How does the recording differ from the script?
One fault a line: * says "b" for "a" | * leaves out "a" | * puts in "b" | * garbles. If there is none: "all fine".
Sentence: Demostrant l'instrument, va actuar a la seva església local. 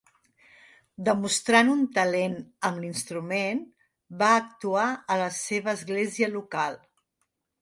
* puts in "un talent amb"